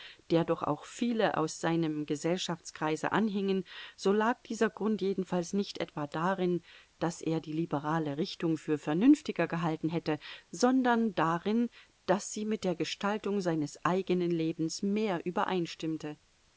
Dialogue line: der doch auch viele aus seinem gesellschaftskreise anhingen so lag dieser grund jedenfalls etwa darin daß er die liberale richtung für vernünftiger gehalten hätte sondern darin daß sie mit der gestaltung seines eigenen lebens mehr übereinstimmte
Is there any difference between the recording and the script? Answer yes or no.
yes